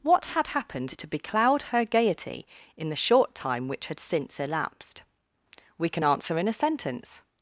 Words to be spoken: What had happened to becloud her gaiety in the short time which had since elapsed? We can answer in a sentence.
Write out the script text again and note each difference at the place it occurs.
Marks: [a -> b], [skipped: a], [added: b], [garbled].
What had happened to becloud her gaiety in the short time which had since elapsed? We can answer in a sentence.